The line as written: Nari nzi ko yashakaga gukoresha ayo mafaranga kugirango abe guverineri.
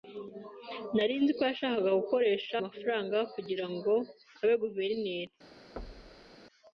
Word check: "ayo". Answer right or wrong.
wrong